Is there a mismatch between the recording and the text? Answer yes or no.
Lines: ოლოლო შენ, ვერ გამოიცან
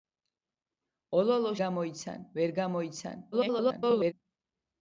yes